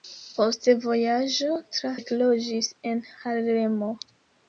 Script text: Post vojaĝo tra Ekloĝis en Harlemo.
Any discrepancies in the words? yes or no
no